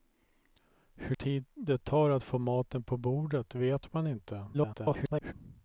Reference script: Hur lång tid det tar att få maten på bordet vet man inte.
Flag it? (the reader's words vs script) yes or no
yes